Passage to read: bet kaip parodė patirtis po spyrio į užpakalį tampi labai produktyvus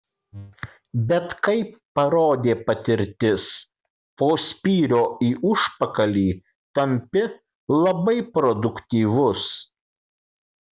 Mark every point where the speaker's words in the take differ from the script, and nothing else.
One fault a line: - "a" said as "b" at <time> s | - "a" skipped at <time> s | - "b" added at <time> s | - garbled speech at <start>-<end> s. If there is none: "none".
none